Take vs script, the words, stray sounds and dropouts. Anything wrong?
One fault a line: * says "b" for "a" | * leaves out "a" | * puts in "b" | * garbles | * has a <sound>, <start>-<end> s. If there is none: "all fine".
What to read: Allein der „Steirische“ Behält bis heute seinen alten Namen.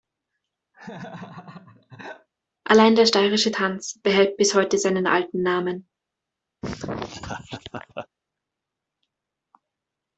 * has a laugh, 0.7-2.3 s
* puts in "Tanz"
* has a laugh, 6.6-8.1 s